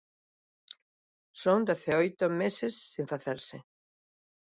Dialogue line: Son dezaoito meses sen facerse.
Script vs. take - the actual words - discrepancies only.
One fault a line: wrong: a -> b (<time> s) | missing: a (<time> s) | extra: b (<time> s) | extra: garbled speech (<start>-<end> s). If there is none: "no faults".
no faults